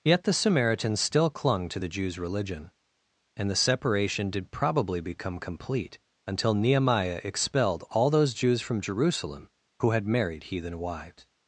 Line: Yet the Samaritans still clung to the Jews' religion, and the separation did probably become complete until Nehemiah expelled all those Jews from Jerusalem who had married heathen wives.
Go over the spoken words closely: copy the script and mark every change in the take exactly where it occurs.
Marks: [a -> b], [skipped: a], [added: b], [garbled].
Yet the Samaritans still clung to the Jews' religion, and the separation did probably become complete until Nehemiah expelled all those Jews from Jerusalem who had married heathen wives.